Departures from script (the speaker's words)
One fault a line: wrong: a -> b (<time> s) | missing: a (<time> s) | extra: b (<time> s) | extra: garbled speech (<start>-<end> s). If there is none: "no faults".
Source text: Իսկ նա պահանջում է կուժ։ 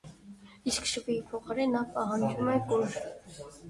extra: շվիի փոխարեն (0.9 s)